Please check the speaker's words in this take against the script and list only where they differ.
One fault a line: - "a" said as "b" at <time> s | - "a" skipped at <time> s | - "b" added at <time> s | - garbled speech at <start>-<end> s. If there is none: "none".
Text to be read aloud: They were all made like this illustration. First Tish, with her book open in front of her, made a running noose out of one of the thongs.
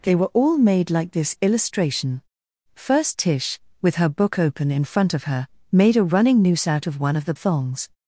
none